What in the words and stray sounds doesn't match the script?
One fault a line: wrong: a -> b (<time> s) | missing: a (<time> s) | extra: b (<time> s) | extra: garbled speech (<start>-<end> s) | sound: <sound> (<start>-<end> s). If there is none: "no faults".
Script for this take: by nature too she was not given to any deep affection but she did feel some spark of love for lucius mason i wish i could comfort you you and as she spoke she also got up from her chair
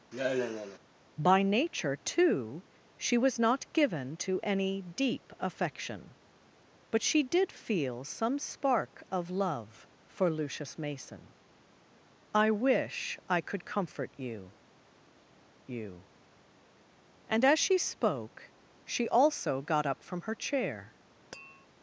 sound: sigh (0.1-0.8 s)
sound: tap (21.3-21.7 s)